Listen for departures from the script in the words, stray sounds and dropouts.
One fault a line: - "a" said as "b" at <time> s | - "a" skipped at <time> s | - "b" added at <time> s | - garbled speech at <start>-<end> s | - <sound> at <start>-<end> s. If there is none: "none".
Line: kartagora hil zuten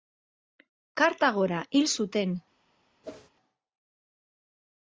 - whoosh at 3.0-3.3 s